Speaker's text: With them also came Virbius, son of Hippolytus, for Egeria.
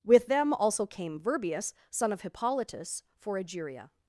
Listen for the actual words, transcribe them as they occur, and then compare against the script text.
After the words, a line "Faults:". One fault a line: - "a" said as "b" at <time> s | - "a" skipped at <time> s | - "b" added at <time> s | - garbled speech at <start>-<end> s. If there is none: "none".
With them also came Virbius, son of Hippolytus, for Egeria.
Faults:
none